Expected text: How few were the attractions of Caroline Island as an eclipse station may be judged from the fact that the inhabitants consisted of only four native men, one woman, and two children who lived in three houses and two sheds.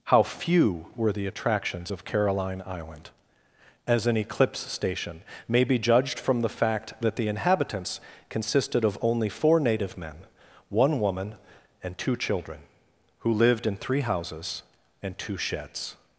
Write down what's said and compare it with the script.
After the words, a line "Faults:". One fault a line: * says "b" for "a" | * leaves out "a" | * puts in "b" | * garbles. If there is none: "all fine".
How few were the attractions of Caroline Island as an eclipse station may be judged from the fact that the inhabitants consisted of only four native men, one woman, and two children who lived in three houses and two sheds.
Faults:
all fine